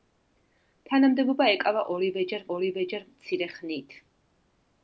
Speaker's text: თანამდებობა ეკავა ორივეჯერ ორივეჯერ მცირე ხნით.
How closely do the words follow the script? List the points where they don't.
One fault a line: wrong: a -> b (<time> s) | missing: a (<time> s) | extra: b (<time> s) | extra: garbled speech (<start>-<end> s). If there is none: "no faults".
no faults